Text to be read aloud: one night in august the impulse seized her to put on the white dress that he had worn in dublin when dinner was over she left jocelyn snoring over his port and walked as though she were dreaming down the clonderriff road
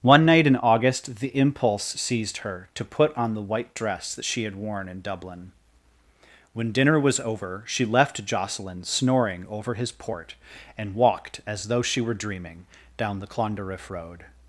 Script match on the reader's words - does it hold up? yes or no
no